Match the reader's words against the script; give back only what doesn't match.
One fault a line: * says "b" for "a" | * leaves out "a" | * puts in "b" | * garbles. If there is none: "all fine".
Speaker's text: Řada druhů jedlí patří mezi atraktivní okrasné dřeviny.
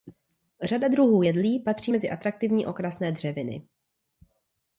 all fine